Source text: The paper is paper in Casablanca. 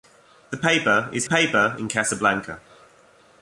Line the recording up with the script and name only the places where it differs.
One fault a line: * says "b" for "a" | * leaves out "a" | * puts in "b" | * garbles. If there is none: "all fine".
all fine